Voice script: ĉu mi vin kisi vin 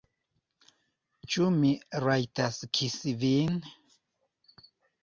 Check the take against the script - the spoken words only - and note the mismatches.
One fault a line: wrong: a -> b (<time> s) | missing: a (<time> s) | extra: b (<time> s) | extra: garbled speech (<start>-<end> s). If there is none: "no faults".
wrong: vin -> rajtas (2.1 s)